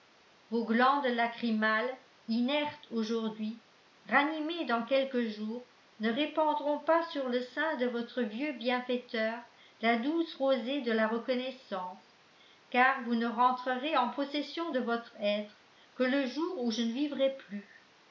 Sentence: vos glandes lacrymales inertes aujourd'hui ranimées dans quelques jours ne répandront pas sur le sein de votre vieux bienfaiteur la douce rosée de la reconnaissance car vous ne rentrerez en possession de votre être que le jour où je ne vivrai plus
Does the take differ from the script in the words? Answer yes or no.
no